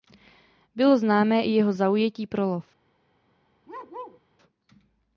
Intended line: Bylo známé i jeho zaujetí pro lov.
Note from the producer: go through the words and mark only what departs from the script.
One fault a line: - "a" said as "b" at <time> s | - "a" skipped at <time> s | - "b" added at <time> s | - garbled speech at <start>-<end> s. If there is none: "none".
none